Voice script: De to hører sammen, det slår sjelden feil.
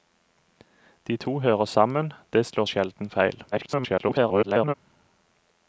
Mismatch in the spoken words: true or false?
true